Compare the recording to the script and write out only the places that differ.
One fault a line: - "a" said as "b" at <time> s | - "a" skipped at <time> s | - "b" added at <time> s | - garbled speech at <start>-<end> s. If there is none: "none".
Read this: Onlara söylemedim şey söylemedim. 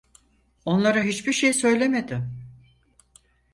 - "söylemedim" said as "hiçbir" at 1.0 s